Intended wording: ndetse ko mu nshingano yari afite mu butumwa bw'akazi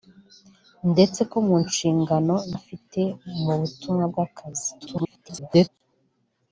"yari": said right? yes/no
no